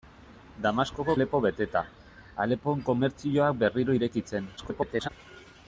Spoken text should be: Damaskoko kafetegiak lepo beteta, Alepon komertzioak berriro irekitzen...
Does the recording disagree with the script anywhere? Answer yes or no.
yes